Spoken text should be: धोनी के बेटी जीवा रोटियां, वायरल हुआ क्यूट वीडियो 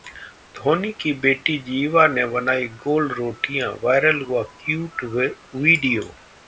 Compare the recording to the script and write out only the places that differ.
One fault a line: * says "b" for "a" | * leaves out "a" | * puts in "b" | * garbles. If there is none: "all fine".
* says "की" for "के"
* puts in "ने बनाई गोल"